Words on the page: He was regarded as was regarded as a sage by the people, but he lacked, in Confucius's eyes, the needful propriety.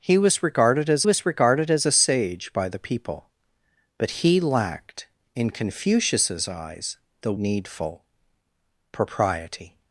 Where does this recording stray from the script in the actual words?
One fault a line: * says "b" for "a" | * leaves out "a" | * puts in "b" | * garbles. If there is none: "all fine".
all fine